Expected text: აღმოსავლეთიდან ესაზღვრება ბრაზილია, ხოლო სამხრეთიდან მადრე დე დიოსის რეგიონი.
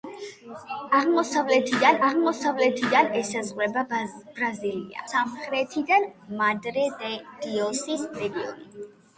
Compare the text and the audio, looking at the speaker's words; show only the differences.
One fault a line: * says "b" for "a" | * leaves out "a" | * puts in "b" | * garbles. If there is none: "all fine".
* puts in "აღმოსავლეთიდან"
* leaves out "ხოლო"